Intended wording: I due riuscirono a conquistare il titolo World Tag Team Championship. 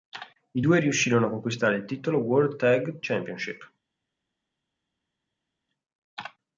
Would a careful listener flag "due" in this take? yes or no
no